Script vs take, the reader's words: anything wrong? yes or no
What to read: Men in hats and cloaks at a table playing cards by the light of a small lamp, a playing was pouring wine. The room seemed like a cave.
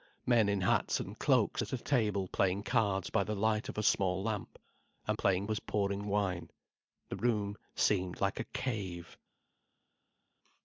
no